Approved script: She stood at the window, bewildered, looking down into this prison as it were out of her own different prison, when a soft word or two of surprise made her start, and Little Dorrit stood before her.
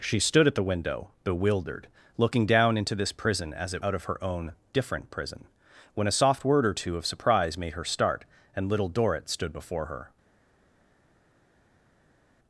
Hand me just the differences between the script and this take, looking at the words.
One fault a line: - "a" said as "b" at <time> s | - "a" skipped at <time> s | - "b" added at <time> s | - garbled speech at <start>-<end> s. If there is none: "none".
- "were" skipped at 3.9 s